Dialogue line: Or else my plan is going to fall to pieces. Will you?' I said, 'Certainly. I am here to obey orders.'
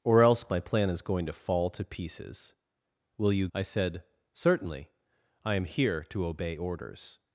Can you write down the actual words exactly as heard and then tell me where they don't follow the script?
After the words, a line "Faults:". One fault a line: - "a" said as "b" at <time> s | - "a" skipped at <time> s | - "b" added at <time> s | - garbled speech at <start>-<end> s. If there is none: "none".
Or else my plan is going to fall to pieces. Will you?' I said, 'Certainly. I am here to obey orders.'
Faults:
none